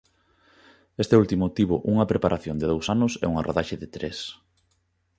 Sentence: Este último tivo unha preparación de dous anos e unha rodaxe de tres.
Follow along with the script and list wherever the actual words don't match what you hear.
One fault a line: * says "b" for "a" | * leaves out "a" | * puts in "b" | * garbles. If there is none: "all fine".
all fine